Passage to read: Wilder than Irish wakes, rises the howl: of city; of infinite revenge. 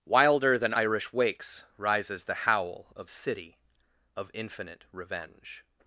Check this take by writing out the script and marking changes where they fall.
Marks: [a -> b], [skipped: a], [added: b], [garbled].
Wilder than Irish wakes, rises the howl: of city; of infinite revenge.